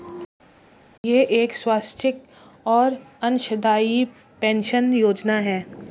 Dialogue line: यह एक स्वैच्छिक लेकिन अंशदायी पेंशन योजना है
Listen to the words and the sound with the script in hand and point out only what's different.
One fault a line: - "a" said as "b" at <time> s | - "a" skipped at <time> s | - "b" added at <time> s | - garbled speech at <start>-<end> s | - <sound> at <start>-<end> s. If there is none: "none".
- "लेकिन" said as "और" at 2.7 s